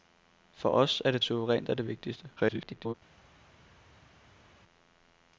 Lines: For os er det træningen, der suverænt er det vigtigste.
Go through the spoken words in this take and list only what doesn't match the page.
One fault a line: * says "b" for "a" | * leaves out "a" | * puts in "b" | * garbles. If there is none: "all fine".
* leaves out "træningen der"
* garbles